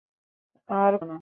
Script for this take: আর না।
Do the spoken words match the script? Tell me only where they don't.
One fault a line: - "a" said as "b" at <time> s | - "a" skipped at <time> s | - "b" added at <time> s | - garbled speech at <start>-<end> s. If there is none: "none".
none